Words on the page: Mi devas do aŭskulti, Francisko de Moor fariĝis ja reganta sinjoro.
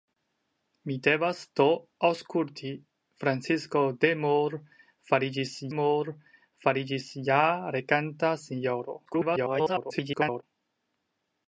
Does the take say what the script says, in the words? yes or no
no